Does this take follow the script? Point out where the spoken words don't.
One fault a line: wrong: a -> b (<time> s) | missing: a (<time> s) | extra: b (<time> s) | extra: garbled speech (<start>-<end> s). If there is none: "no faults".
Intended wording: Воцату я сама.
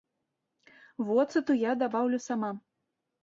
extra: дабаўлю (1.8 s)